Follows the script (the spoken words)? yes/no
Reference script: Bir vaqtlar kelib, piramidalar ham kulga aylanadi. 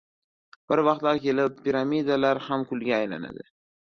yes